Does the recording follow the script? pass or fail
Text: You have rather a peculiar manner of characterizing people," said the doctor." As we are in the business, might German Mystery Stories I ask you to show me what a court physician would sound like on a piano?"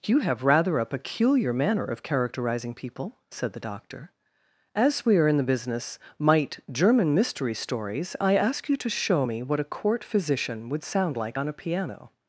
pass